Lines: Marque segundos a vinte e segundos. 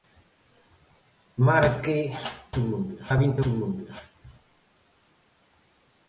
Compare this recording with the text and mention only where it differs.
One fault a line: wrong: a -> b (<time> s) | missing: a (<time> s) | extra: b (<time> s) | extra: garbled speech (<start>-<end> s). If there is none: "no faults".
no faults